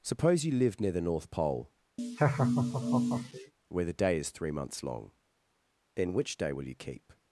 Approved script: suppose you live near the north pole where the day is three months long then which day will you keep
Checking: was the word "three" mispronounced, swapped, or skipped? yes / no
no